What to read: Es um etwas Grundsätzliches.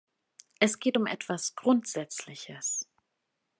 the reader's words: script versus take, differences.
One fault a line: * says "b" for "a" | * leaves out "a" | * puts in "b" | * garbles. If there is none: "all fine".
* puts in "geht"